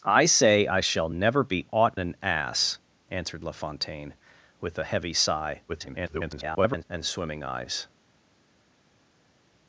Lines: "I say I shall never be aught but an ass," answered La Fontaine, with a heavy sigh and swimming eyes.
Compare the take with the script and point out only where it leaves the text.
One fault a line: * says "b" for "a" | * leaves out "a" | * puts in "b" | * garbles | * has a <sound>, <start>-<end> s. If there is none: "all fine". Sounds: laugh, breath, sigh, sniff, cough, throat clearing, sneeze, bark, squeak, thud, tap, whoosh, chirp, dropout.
* leaves out "but"
* garbles